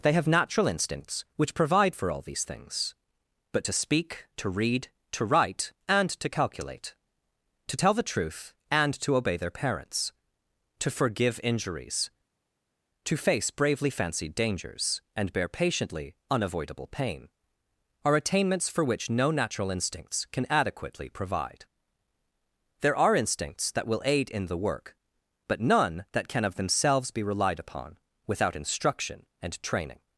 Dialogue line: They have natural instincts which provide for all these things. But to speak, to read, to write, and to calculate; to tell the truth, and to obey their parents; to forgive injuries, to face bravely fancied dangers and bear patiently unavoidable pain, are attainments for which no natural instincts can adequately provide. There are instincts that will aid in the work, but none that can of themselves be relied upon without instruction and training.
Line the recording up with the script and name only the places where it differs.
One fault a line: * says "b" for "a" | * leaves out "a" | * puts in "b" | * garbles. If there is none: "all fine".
all fine